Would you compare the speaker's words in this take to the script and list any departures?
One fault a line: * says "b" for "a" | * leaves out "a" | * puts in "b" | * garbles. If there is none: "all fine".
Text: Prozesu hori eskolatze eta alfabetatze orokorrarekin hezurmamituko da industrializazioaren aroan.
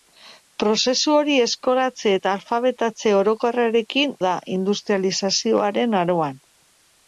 * leaves out "hezurmamituko"